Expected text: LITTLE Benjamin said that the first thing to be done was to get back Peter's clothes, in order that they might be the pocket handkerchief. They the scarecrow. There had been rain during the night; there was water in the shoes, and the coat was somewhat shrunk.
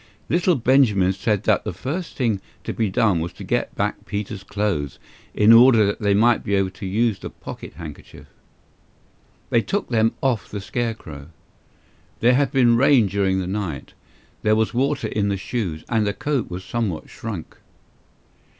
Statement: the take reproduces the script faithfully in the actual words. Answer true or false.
false